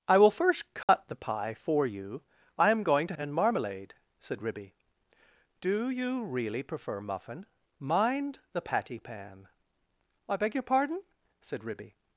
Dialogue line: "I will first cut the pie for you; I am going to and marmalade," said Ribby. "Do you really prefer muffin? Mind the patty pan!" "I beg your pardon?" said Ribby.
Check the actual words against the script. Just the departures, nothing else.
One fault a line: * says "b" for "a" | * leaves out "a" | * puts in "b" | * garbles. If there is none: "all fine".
all fine